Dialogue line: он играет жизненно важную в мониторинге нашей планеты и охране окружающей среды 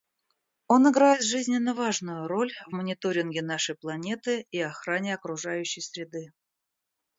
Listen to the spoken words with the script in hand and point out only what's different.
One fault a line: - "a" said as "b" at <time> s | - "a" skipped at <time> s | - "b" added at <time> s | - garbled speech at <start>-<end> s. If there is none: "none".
- "роль" added at 2.3 s